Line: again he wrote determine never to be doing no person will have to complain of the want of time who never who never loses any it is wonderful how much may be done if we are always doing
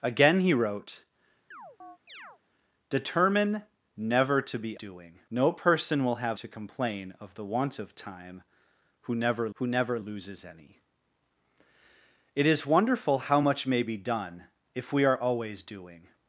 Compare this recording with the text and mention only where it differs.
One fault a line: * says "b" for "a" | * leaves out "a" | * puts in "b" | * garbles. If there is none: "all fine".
all fine